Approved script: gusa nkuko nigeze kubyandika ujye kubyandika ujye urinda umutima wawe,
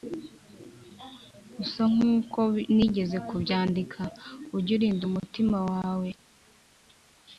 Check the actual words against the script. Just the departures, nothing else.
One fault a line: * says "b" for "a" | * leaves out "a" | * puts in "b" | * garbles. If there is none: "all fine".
* leaves out "kubyandika ujye"